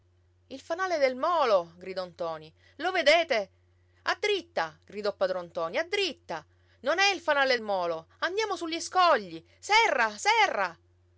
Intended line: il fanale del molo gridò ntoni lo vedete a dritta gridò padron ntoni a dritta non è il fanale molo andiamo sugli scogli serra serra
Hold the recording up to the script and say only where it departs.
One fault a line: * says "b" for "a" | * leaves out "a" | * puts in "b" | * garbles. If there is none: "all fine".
all fine